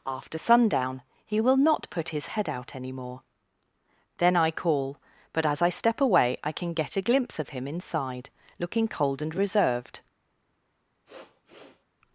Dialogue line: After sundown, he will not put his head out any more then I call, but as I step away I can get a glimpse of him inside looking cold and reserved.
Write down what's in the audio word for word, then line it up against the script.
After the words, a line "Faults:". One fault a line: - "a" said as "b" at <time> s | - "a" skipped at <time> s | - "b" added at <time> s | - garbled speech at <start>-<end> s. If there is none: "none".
After sundown, he will not put his head out any more then I call, but as I step away I can get a glimpse of him inside looking cold and reserved.
Faults:
none